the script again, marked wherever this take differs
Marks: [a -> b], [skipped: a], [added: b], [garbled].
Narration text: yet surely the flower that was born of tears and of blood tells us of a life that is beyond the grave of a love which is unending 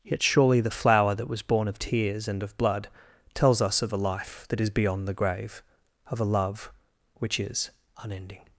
yet surely the flower that was born of tears and of blood tells us of a life that is beyond the grave of a love which is unending